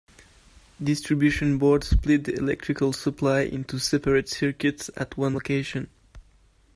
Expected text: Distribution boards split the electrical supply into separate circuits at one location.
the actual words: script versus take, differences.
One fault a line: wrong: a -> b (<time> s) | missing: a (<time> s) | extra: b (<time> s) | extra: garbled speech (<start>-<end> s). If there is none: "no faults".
no faults